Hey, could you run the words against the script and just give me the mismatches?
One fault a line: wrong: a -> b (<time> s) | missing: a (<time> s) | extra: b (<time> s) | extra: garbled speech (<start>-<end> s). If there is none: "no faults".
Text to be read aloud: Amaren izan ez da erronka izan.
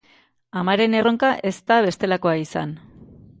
wrong: izan -> erronka (1.0 s)
wrong: erronka -> bestelakoa (1.9 s)